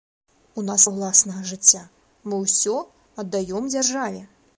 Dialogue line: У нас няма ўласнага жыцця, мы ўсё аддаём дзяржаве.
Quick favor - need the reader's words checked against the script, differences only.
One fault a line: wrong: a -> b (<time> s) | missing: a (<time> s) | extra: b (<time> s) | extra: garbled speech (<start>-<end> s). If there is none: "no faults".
missing: няма (0.8 s)